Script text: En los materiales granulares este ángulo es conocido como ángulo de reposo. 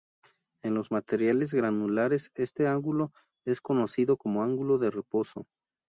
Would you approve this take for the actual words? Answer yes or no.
yes